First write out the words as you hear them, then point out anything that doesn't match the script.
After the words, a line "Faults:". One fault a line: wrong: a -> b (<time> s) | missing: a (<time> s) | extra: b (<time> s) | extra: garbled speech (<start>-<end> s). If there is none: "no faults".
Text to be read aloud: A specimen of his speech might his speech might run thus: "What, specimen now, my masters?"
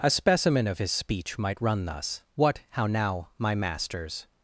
A specimen of his speech might run thus: "What, how now, my masters?"
Faults:
missing: his speech might (1.6 s)
wrong: specimen -> how (2.7 s)